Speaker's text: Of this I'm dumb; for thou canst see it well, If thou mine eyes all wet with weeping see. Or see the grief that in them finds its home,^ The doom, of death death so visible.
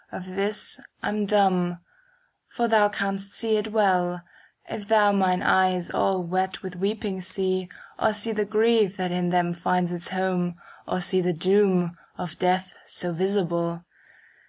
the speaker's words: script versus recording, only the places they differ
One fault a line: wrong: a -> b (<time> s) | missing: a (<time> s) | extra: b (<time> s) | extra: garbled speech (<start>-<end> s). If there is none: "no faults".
extra: Or see (10.9 s)
missing: death (12.8 s)